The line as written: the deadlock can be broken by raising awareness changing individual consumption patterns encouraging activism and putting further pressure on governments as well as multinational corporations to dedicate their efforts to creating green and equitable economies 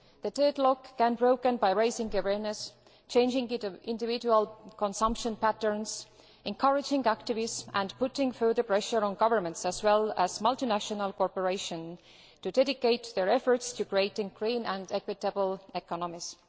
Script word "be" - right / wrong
wrong